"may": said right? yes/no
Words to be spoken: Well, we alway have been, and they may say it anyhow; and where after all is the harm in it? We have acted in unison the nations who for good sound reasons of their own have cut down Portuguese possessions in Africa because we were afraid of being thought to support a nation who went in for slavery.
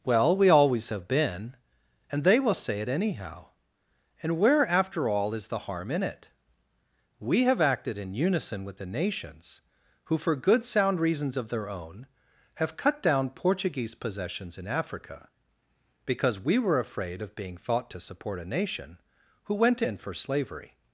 no